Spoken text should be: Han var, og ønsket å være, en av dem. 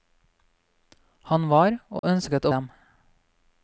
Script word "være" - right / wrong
wrong